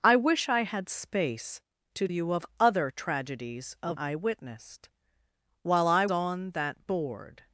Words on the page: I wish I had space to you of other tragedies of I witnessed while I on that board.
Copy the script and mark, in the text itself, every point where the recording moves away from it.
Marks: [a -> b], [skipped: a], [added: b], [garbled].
I wish I had space to you of other tragedies of I witnessed while I on that board.